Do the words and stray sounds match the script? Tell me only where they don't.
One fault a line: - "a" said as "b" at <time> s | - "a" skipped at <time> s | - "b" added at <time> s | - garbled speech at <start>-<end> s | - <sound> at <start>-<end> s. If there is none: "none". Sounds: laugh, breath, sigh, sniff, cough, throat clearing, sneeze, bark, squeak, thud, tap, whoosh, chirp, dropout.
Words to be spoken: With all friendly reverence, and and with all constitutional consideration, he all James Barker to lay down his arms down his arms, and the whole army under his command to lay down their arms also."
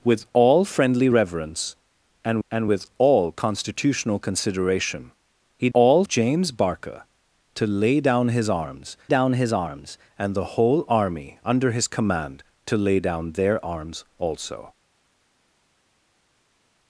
none